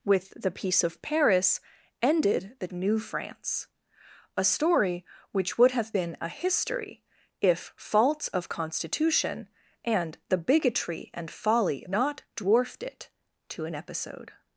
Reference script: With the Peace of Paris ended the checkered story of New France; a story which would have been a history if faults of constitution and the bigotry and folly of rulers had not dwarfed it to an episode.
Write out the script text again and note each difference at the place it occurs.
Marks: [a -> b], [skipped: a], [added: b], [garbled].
With the Peace of Paris ended the [skipped: checkered story of] New France; a story which would have been a history if faults of constitution and the bigotry and folly [skipped: of rulers had] not dwarfed it to an episode.